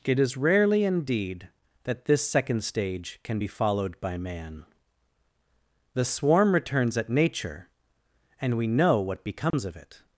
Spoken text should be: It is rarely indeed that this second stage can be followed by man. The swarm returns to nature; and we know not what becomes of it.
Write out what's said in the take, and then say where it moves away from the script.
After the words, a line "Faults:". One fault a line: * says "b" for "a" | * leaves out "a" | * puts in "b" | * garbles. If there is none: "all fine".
It is rarely indeed that this second stage can be followed by man. The swarm returns at nature; and we know what becomes of it.
Faults:
* says "at" for "to"
* leaves out "not"